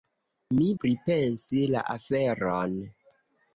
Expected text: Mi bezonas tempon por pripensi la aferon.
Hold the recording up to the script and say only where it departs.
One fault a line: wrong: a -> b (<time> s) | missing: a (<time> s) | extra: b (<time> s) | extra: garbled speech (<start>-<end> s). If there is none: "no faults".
missing: bezonas tempon por (0.7 s)